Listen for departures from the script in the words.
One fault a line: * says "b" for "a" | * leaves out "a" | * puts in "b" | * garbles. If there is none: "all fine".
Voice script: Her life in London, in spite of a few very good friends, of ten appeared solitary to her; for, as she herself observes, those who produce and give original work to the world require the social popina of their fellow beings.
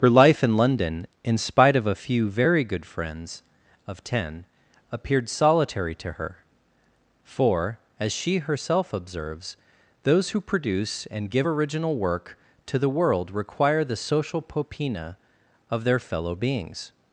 all fine